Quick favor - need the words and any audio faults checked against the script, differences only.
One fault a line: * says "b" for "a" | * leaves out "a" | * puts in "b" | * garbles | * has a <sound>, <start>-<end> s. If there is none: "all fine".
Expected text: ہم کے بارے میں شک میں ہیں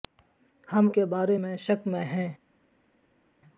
all fine